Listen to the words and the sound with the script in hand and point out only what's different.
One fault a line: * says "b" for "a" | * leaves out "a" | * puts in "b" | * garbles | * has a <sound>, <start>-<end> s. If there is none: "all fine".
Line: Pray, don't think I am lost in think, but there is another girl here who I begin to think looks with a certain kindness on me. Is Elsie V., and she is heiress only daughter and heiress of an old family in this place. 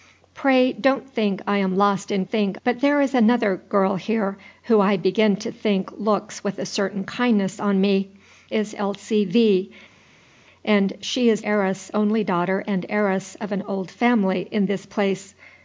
all fine